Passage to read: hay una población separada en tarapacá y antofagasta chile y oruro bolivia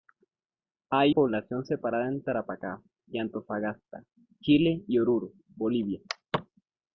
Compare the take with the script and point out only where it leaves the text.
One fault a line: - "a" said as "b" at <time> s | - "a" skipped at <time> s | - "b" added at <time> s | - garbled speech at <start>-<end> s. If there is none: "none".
- "una" skipped at 1.1 s